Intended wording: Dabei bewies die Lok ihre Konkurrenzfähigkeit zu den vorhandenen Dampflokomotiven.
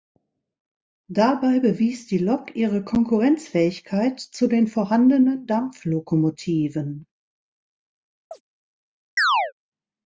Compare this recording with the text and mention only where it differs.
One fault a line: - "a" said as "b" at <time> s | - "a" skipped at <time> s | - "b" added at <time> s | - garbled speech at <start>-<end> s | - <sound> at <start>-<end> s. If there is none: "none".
- chirp at 8.3-8.4 s
- chirp at 9.2-9.5 s